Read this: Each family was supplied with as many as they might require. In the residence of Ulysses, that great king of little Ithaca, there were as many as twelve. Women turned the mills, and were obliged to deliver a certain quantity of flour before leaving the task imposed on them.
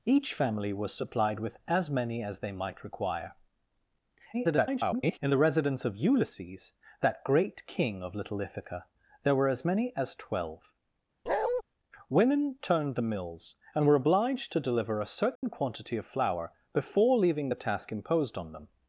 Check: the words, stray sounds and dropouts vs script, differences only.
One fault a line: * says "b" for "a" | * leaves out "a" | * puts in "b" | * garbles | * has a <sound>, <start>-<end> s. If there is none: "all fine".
* garbles
* has a bark, 11.3-11.6 s
* has a dropout, 15.4-15.4 s